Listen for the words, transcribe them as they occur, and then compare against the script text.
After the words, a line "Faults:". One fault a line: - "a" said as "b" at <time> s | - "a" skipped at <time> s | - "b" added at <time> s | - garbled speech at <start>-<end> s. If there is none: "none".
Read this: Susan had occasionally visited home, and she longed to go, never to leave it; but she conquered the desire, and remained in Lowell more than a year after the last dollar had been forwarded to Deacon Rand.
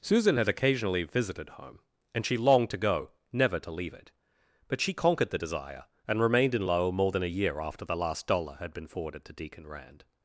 Susan had occasionally visited home, and she longed to go, never to leave it; but she conquered the desire, and remained in Lowell more than a year after the last dollar had been forwarded to Deacon Rand.
Faults:
none